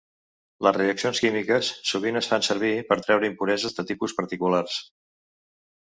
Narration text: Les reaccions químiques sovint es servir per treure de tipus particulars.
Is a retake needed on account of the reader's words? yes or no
yes